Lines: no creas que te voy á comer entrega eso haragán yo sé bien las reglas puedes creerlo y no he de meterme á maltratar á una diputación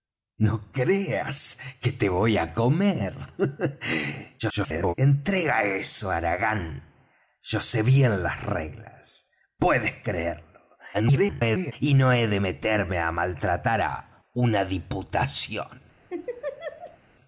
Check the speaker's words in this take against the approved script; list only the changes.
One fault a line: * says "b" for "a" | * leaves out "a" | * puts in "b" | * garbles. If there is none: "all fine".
* garbles
* garbles